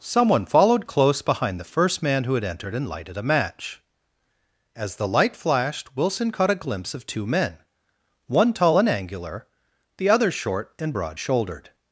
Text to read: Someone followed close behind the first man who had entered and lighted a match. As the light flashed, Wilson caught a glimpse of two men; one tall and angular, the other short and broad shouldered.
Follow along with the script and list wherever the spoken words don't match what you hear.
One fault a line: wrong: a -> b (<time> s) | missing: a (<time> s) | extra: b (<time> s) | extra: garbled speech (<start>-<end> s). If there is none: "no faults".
no faults